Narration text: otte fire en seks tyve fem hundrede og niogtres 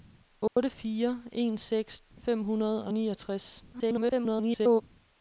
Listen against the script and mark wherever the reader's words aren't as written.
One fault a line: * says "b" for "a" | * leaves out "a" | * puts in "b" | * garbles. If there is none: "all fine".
* leaves out "tyve"
* garbles